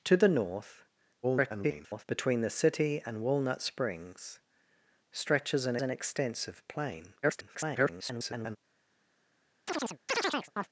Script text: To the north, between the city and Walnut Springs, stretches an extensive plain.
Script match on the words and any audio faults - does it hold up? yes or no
no